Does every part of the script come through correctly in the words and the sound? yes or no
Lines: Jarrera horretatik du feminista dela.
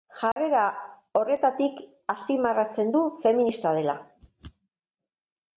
no